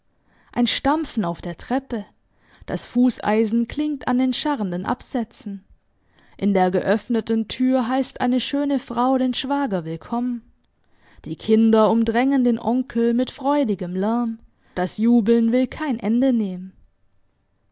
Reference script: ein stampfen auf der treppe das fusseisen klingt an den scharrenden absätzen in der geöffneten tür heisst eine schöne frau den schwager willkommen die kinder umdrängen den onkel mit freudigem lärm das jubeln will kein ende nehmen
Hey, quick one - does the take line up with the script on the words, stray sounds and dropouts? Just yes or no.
yes